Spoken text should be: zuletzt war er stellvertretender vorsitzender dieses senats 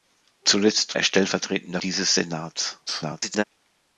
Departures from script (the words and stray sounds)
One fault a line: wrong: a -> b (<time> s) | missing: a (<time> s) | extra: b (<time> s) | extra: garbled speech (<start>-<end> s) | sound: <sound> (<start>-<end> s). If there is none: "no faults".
missing: war (1.0 s)
missing: vorsitzender (1.8 s)
extra: garbled speech (2.9-3.4 s)